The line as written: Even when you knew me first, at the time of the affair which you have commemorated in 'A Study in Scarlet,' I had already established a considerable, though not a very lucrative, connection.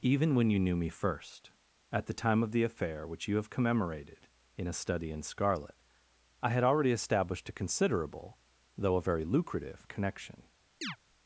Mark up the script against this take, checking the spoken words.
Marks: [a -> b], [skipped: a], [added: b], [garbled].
Even when you knew me first, at the time of the affair which you have commemorated in 'A Study in Scarlet,' I had already established a considerable, though [skipped: not] a very lucrative, connection.